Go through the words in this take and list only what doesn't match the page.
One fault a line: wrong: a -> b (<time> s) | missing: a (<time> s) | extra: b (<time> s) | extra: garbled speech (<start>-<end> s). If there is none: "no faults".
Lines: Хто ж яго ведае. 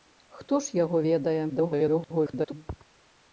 extra: garbled speech (1.5-2.5 s)